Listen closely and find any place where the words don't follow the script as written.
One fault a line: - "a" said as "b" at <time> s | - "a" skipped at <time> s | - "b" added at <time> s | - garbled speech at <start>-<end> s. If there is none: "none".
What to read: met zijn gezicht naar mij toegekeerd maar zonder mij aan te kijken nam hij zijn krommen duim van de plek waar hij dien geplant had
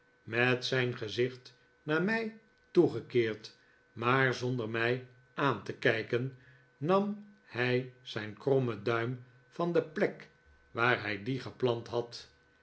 none